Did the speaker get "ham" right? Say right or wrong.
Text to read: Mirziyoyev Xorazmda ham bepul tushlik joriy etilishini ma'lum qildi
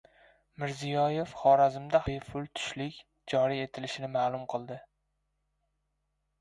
wrong